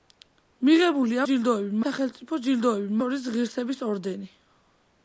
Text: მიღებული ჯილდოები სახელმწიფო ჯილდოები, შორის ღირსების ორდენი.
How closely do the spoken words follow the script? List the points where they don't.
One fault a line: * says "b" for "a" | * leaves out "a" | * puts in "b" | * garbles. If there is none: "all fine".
all fine